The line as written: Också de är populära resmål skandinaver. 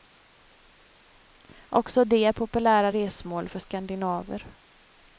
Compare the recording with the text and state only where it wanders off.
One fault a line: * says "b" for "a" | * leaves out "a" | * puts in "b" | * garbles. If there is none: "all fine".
* puts in "för"